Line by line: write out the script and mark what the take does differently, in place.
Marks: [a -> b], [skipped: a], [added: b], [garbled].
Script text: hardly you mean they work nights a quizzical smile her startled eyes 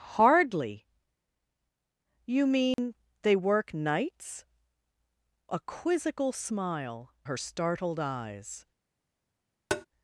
hardly you mean they work nights a quizzical smile her startled eyes